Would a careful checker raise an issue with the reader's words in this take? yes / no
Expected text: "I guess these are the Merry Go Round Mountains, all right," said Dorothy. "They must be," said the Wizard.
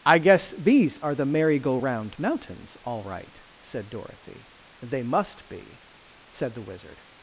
no